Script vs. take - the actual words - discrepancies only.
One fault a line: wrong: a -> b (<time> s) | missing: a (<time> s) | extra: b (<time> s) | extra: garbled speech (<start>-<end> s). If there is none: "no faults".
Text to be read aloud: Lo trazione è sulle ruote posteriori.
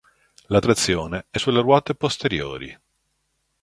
wrong: Lo -> La (0.5 s)